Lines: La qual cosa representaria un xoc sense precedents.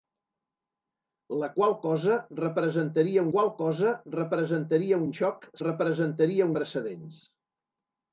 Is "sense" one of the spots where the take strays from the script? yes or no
yes